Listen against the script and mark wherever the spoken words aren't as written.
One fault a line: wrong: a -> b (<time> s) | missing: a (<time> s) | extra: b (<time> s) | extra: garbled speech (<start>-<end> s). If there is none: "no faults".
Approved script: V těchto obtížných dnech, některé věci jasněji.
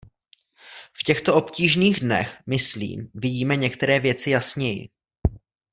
extra: myslím vidíme (2.5 s)